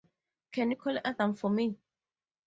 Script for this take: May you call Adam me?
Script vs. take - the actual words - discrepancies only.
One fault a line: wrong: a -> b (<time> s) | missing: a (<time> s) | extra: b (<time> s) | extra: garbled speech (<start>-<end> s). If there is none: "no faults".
wrong: May -> Can (0.5 s)
extra: for (1.3 s)